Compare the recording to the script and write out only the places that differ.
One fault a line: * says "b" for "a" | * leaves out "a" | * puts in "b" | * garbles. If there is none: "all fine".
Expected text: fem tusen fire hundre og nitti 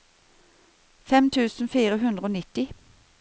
all fine